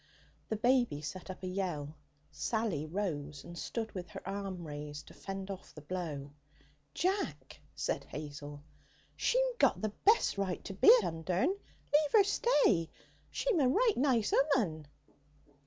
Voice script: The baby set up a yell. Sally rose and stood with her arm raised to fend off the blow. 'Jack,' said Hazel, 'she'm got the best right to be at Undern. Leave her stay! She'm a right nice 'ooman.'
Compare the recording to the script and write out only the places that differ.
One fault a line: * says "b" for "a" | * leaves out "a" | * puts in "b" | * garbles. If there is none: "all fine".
* leaves out "at"